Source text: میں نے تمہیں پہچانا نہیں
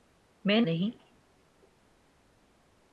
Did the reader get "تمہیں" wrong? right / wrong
wrong